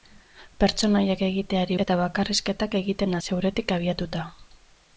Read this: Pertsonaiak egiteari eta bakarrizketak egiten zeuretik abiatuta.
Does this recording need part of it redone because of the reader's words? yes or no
no